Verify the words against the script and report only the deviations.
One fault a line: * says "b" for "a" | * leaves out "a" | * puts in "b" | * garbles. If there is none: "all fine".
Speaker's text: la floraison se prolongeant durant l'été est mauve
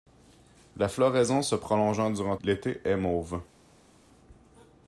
all fine